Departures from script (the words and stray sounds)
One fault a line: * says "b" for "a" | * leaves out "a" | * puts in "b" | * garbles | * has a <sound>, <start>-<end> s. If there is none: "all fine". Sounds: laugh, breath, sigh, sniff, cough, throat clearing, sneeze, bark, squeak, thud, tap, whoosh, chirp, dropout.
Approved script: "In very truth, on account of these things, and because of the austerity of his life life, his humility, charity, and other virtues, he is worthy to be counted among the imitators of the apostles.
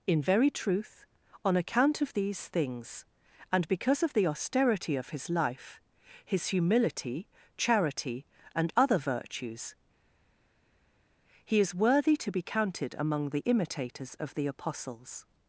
* leaves out "life"